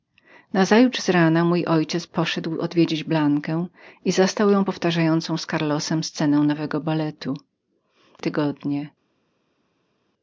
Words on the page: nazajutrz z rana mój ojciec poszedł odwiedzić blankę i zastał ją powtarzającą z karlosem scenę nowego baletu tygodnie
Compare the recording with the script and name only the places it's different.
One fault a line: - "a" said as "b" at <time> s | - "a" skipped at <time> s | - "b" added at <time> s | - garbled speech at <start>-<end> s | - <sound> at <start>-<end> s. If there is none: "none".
none